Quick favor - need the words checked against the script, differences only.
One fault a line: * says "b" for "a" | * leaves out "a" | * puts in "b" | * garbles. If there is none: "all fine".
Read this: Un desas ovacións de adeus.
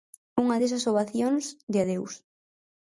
* says "Unha" for "Un"